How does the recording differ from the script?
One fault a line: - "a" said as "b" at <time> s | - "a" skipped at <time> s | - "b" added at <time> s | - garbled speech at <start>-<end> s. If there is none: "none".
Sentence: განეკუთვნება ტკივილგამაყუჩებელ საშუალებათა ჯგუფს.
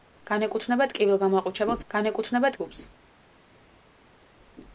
- "საშუალებათა" said as "განეკუთვნება" at 1.9 s